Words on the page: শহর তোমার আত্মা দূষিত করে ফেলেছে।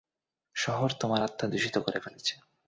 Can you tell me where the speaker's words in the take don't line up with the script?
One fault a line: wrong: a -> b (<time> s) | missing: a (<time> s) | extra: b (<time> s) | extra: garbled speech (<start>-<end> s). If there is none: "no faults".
no faults